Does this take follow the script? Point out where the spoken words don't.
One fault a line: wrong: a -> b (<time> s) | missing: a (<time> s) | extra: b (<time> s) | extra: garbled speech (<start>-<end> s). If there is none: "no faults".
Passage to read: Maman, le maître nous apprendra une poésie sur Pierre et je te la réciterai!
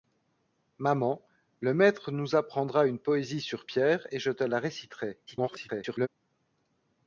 extra: garbled speech (5.3-6.1 s)